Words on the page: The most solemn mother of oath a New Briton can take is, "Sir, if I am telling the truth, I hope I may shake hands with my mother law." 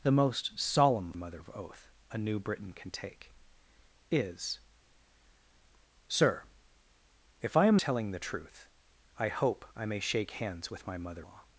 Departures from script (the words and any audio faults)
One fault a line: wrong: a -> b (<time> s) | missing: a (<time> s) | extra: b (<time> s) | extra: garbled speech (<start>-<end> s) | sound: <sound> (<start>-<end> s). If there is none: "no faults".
no faults